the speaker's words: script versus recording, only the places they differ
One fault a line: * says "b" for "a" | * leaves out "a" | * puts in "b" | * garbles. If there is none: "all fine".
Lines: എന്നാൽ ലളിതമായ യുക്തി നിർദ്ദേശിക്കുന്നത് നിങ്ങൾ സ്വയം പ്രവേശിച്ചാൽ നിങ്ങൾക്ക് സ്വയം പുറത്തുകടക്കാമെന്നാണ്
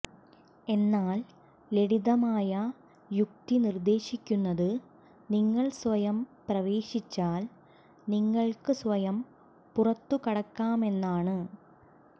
all fine